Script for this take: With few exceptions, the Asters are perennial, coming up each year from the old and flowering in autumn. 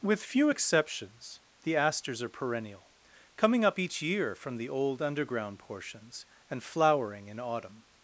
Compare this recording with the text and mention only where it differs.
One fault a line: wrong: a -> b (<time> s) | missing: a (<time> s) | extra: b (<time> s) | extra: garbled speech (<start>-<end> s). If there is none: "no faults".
extra: underground portions (5.0 s)